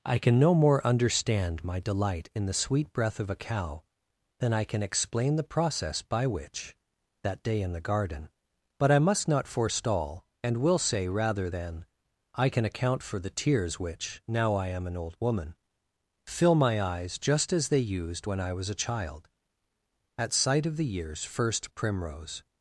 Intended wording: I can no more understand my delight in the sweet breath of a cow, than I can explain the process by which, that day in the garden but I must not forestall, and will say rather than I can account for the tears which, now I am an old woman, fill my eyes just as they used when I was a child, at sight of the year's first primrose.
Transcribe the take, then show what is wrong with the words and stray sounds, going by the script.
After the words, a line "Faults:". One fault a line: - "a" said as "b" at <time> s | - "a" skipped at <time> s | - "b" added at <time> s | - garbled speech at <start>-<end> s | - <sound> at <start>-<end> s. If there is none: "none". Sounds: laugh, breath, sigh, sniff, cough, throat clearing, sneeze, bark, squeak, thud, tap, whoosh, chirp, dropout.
I can no more understand my delight in the sweet breath of a cow, than I can explain the process by which, that day in the garden but I must not forestall, and will say rather than I can account for the tears which, now I am an old woman, fill my eyes just as they used when I was a child, at sight of the year's first primrose.
Faults:
none